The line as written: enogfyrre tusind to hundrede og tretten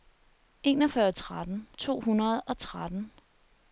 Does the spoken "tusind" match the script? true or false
false